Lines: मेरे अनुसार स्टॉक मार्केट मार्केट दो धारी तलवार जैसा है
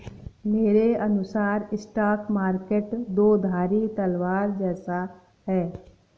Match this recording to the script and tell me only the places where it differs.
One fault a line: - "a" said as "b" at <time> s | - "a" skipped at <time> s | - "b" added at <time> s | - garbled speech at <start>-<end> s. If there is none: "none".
- "मार्केट" skipped at 2.9 s